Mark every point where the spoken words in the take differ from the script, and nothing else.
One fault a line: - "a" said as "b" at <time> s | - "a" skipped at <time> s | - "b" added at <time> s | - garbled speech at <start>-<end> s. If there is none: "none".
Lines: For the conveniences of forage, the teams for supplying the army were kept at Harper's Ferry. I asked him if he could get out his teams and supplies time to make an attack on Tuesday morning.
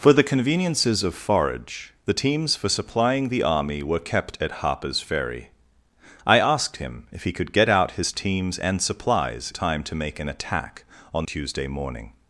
none